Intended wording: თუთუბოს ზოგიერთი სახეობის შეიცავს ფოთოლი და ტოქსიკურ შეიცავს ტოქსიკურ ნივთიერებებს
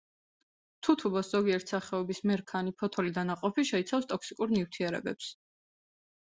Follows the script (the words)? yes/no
no